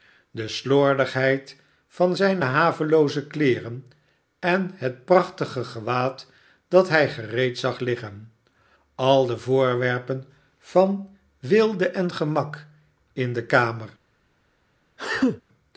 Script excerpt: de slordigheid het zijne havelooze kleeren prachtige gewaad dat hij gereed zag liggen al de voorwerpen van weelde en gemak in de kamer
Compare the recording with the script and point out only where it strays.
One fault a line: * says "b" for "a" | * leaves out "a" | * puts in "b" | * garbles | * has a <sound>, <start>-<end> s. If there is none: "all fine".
* says "van" for "het"
* puts in "en het"
* has a sneeze, 15.0-15.4 s